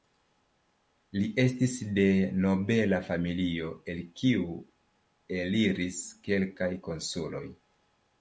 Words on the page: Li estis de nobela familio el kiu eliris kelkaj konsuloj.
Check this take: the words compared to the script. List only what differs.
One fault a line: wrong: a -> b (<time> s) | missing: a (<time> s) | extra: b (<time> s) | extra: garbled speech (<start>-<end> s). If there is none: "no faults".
no faults